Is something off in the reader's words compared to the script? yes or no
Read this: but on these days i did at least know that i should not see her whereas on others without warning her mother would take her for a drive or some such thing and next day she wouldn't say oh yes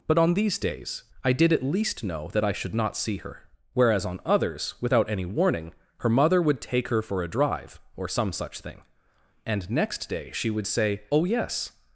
yes